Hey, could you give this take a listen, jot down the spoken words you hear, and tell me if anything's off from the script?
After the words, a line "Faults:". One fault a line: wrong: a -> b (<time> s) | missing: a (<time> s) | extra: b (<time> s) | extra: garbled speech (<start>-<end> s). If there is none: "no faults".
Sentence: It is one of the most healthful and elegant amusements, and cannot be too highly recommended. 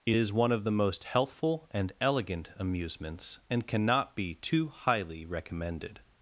It is one of the most healthful and elegant amusements, and cannot be too highly recommended.
Faults:
no faults